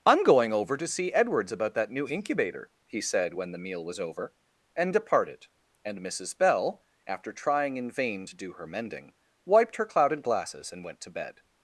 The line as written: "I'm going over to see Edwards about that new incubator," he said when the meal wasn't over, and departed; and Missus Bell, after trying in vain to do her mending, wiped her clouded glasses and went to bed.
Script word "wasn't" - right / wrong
wrong